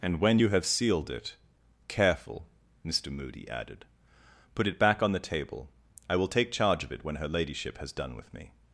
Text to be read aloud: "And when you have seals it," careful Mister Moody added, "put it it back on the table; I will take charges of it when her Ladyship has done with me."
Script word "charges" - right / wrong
wrong